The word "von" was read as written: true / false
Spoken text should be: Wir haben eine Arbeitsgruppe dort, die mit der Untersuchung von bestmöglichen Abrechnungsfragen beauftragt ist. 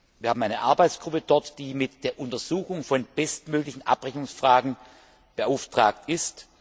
true